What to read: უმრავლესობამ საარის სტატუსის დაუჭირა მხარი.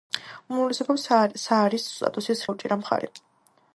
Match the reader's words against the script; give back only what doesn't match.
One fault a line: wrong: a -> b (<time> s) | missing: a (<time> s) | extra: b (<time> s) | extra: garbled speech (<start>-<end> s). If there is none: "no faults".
no faults